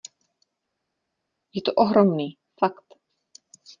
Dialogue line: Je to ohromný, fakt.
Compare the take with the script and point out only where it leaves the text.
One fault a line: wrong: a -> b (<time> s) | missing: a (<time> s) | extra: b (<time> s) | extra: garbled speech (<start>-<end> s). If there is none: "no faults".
no faults